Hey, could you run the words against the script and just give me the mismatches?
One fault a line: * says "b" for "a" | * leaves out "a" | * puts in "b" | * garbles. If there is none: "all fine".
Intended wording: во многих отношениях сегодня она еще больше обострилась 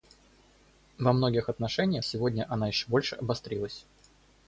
all fine